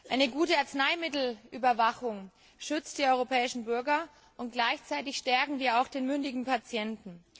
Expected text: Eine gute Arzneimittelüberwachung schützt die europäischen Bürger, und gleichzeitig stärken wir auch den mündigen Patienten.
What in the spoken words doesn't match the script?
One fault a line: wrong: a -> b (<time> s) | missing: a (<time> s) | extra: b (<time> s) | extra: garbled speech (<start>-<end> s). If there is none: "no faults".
no faults